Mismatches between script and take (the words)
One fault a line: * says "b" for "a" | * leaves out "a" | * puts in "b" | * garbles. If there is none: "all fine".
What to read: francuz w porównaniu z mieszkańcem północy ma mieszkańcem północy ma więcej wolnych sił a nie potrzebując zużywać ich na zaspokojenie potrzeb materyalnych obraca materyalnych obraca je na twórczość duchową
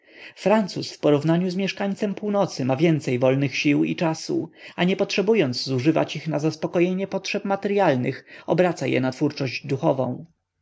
* leaves out "mieszkańcem północy ma"
* puts in "i czasu"
* leaves out "materyalnych obraca"